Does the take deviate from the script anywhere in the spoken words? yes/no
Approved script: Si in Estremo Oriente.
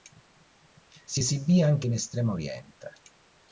yes